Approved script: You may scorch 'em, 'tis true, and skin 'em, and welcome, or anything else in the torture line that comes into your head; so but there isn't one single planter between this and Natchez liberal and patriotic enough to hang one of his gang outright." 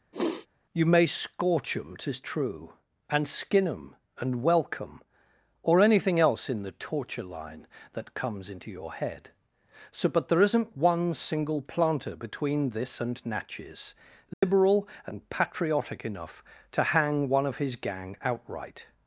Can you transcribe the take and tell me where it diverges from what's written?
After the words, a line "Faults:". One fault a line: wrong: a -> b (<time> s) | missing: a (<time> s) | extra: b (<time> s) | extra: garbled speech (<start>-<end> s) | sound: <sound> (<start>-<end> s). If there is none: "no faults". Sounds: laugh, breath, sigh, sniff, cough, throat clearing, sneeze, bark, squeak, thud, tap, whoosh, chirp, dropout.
You may scorch 'em, 'tis true, and skin 'em, and welcome, or anything else in the torture line that comes into your head; so but there isn't one single planter between this and Natchez liberal and patriotic enough to hang one of his gang outright."
Faults:
sound: sniff (0.1-0.5 s)
sound: dropout (14.3-14.4 s)